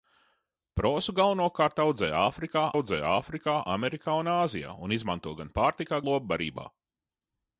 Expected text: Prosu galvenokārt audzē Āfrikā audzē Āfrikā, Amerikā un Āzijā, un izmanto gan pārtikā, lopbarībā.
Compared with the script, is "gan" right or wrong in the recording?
right